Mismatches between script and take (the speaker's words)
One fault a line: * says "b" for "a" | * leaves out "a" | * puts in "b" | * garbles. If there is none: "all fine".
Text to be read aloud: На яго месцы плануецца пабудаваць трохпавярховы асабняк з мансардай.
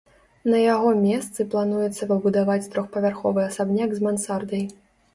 all fine